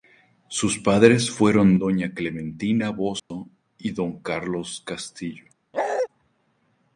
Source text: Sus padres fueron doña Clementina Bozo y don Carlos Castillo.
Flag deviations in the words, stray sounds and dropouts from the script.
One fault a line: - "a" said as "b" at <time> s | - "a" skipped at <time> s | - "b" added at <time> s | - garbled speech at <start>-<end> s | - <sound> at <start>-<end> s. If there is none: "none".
- dropout at 3.2-3.3 s
- bark at 5.7-6.1 s